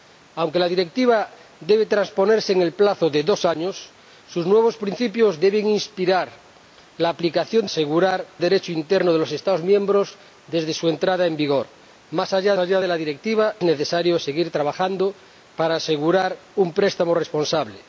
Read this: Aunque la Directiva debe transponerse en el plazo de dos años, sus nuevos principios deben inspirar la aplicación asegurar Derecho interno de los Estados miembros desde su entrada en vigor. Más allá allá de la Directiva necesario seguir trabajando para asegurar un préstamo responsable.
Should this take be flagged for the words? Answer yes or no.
no